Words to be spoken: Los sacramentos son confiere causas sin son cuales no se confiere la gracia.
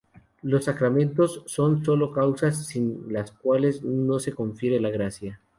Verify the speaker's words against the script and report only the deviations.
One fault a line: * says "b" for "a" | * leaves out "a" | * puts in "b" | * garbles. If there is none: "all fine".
* says "sólo" for "confiere"
* says "las" for "son"